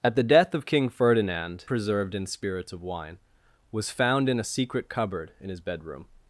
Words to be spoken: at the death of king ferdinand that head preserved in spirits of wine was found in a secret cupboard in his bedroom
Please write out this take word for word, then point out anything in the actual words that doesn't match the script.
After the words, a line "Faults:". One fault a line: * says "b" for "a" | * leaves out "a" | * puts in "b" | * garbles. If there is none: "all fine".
at the death of king ferdinand preserved in spirits of wine was found in a secret cupboard in his bedroom
Faults:
* leaves out "that head"